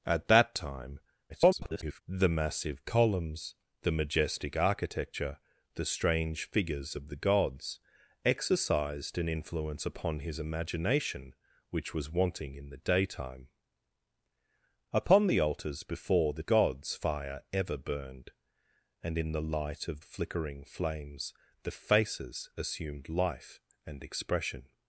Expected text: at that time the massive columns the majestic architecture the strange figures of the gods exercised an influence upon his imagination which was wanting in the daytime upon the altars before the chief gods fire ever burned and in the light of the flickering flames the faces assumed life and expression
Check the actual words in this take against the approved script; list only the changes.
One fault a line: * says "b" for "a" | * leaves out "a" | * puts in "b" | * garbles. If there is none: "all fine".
* garbles
* leaves out "chief"
* leaves out "the"